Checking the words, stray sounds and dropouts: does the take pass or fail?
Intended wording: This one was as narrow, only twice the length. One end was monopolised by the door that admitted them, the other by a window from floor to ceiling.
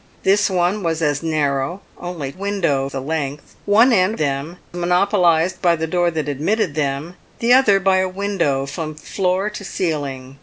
fail